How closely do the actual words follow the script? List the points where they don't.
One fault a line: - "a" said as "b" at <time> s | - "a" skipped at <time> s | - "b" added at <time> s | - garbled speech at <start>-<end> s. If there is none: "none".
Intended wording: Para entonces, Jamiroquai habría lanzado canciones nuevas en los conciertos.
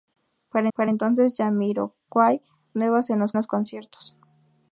- "para" added at 0.7 s
- "habría lanzado canciones" skipped at 2.4 s
- "los" added at 3.3 s